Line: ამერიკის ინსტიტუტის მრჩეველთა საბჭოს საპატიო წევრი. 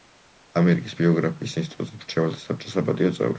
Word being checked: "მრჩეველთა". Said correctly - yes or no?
yes